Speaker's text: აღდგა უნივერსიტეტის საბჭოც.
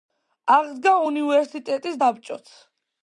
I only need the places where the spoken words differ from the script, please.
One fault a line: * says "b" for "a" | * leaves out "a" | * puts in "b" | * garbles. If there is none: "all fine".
all fine